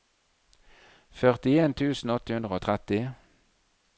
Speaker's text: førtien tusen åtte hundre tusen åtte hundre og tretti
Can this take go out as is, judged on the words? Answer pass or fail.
fail